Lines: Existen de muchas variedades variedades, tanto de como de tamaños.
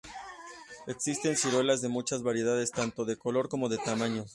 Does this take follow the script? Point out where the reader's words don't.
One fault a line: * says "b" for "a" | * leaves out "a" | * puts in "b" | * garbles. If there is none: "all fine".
* puts in "ciruelas"
* leaves out "variedades"
* puts in "color"